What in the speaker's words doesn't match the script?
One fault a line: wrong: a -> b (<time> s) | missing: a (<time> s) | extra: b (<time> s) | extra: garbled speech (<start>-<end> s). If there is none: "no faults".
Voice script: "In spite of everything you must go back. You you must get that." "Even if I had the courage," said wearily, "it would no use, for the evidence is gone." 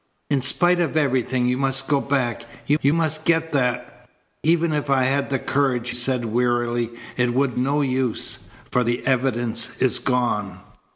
no faults